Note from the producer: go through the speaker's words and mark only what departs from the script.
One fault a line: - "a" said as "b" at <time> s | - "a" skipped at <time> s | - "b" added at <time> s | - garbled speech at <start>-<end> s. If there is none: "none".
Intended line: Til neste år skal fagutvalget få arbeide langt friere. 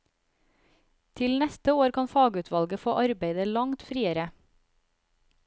- "skal" said as "kan" at 2.0 s